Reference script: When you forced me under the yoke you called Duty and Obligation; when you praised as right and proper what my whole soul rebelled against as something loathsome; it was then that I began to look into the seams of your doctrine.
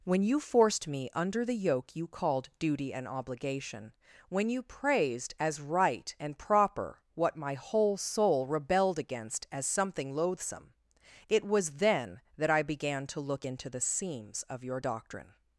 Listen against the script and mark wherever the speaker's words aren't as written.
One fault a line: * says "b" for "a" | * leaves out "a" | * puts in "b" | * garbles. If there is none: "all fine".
all fine